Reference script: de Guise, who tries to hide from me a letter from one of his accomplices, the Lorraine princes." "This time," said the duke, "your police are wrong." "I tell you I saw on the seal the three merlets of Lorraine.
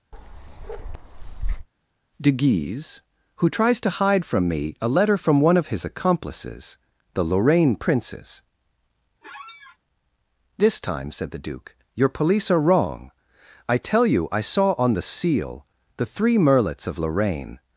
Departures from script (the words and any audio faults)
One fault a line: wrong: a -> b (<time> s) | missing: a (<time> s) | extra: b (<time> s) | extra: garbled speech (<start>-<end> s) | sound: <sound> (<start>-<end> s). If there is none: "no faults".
sound: bark (0.1-1.7 s)
sound: squeak (9.2-9.8 s)